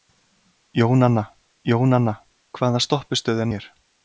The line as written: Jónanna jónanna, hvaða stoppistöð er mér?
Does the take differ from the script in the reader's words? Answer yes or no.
no